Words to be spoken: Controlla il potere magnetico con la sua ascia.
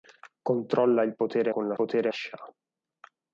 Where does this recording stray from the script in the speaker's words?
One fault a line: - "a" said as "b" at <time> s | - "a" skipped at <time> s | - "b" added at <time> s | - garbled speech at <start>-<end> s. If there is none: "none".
- "magnetico" skipped at 1.5 s
- "sua" said as "potere" at 1.7 s